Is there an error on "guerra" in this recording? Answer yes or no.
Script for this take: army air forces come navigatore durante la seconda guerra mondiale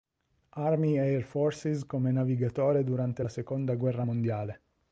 no